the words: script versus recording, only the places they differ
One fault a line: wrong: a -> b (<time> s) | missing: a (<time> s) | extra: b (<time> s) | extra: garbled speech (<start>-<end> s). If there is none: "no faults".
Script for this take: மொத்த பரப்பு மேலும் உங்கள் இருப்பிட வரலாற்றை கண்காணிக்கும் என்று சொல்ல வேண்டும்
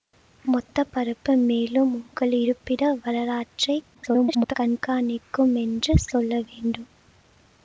extra: garbled speech (3.9-4.5 s)